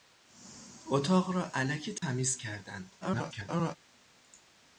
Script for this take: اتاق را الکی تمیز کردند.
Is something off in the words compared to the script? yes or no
yes